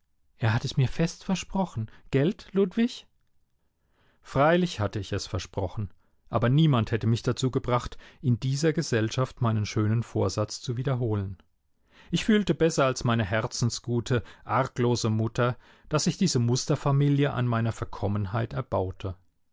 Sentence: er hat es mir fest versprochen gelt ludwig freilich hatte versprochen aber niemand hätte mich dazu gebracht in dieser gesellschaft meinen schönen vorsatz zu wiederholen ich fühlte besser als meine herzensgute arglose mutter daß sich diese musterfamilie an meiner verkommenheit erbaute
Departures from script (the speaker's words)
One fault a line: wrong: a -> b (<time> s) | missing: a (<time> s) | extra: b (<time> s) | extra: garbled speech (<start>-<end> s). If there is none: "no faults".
extra: ich es (5.0 s)